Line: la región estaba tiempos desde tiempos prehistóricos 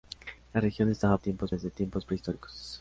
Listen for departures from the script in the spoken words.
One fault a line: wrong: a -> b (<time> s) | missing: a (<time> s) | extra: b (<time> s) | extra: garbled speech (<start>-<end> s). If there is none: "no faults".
no faults